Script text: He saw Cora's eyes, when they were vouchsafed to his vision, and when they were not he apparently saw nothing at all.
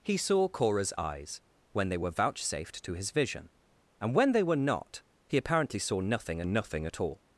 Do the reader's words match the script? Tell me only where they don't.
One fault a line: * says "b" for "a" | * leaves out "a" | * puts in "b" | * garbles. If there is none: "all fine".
* puts in "nothing"